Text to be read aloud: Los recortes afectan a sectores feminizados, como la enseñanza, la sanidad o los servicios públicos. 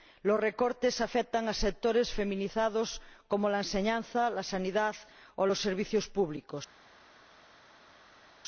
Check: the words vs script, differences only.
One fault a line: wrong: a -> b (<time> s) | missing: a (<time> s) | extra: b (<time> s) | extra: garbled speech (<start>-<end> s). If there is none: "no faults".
no faults